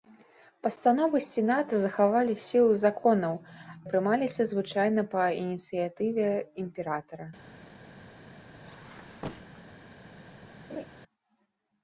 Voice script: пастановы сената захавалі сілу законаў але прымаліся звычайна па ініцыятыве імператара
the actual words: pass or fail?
fail